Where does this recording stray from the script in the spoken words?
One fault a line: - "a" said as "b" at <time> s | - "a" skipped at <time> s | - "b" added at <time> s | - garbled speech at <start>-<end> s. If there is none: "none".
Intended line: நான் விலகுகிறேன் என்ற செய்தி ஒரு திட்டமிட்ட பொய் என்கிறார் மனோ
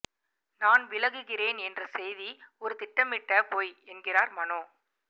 none